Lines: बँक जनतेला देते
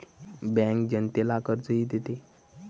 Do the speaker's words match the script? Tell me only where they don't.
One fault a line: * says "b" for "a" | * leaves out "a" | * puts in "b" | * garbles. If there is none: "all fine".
* puts in "कर्जही"